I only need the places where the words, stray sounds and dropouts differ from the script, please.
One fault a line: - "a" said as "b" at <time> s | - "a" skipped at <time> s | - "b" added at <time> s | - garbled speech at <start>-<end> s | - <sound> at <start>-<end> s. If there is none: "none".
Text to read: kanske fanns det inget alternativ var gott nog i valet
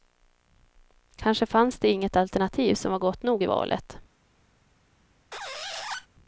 - "som" added at 2.8 s
- squeak at 5.3-6.1 s